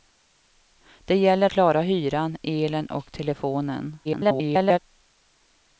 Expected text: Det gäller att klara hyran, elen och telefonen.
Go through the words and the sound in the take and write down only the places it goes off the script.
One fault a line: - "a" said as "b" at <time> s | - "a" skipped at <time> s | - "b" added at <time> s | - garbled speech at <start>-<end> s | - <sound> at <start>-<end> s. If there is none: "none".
- "att" skipped at 1.5 s
- garbled speech at 4.0-4.8 s